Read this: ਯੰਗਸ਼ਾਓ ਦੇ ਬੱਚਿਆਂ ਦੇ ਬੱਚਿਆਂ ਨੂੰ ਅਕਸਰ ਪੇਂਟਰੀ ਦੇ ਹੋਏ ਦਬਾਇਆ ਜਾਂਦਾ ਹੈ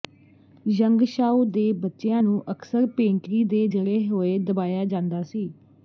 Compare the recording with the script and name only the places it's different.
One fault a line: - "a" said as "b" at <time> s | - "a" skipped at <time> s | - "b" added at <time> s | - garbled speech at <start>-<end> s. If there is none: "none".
- "ਦੇ ਬੱਚਿਆਂ" skipped at 2.2 s
- "ਜੜੇ" added at 3.7 s
- "ਹੈ" said as "ਸੀ" at 5.2 s